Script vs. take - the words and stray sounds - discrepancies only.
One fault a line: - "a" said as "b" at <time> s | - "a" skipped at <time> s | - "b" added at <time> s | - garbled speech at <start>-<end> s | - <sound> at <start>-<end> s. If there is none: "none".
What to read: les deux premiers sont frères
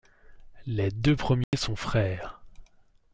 - dropout at 1.4-1.5 s